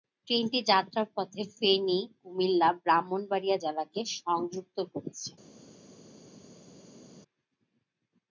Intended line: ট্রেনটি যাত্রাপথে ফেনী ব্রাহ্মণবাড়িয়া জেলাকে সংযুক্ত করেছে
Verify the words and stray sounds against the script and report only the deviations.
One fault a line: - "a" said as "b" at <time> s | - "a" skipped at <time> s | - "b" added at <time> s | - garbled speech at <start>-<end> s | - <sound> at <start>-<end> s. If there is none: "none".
- "কুমিল্লা" added at 2.2 s